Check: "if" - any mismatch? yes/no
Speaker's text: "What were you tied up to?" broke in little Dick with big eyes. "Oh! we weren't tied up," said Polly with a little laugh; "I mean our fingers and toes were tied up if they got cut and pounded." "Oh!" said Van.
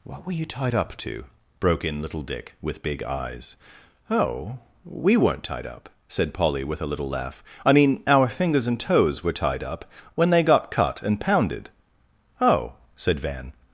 yes